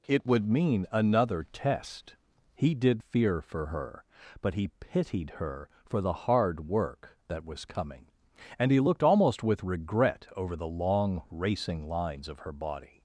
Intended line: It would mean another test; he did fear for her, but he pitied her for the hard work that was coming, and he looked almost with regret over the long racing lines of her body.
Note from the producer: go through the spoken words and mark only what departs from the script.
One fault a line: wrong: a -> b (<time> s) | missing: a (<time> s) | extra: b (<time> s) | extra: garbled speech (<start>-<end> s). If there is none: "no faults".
no faults